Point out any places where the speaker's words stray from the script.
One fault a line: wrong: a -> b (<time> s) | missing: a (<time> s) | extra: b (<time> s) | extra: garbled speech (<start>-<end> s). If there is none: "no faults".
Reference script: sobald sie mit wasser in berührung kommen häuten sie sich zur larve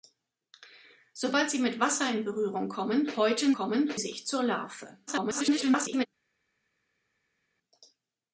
wrong: sie -> kommen (3.5 s)
extra: garbled speech (5.1-6.1 s)